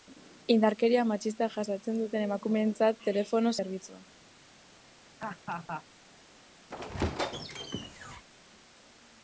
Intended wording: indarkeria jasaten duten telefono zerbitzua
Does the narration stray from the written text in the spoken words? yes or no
yes